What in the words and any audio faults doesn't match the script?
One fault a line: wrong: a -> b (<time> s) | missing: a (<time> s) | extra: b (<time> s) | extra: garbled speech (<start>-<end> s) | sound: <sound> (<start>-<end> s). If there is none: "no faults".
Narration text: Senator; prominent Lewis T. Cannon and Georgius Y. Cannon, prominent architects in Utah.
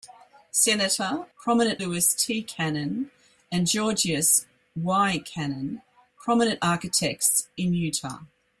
no faults